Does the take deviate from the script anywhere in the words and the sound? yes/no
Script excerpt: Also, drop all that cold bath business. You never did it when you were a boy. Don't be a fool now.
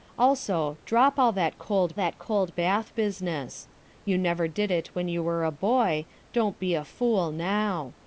yes